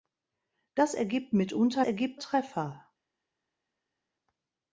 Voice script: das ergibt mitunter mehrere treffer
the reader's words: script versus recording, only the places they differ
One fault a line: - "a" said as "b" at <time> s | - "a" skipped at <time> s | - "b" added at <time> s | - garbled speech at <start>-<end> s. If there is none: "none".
- "mehrere" said as "ergibt" at 1.8 s